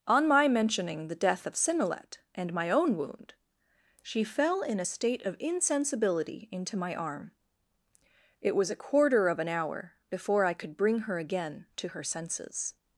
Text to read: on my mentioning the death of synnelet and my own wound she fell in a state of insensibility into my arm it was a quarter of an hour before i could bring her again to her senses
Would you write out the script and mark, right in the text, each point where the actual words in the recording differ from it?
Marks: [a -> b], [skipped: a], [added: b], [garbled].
on my mentioning the death of synnelet and my own wound she fell in a state of insensibility into my arm it was a quarter of an hour before i could bring her again to her senses